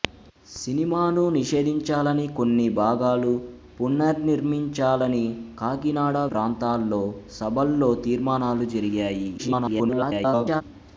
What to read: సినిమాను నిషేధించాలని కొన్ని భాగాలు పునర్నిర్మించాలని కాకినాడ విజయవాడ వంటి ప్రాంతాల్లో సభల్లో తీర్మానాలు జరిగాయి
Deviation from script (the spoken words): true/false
true